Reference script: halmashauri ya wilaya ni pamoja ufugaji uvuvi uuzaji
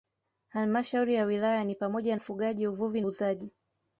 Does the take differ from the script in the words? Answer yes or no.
no